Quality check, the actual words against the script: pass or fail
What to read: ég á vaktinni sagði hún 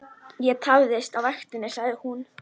fail